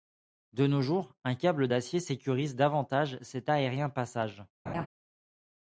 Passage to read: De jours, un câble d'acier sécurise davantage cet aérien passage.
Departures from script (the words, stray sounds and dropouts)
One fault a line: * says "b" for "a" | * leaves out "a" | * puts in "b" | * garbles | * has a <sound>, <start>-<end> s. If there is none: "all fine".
* puts in "nos"
* has a laugh, 4.7-4.9 s